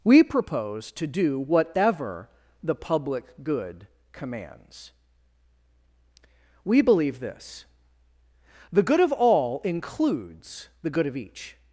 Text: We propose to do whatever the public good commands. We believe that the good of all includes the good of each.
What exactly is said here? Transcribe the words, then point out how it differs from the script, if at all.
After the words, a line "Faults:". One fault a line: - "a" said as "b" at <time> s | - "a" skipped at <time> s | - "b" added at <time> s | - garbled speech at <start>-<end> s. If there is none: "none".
We propose to do whatever the public good commands. We believe this the good of all includes the good of each.
Faults:
- "that" said as "this" at 7.2 s